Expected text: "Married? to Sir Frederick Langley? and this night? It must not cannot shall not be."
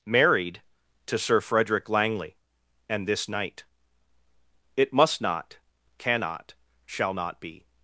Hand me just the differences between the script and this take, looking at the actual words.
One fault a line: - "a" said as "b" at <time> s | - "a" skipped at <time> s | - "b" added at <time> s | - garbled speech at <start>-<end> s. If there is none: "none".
none